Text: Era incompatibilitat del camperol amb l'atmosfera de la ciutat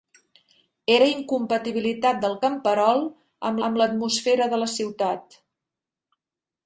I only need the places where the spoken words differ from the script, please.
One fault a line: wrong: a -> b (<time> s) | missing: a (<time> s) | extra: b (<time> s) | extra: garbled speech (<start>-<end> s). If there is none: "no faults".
extra: amb (3.7 s)